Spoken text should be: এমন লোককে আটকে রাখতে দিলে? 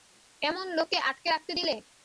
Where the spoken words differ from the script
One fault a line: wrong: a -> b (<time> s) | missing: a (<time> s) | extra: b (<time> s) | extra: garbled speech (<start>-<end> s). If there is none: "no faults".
no faults